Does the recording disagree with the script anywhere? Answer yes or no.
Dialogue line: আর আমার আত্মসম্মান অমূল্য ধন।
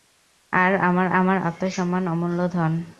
yes